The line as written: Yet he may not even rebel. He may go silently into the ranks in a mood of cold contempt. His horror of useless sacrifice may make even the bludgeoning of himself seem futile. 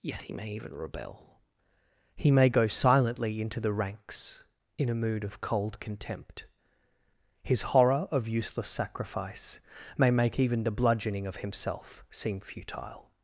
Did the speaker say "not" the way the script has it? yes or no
no